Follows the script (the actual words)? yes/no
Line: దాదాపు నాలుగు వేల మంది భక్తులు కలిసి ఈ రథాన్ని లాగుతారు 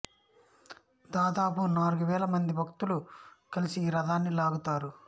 yes